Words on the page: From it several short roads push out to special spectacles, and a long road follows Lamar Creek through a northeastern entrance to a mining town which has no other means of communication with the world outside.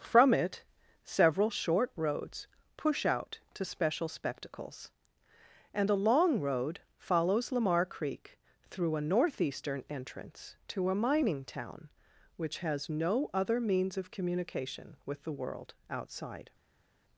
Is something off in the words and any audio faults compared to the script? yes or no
no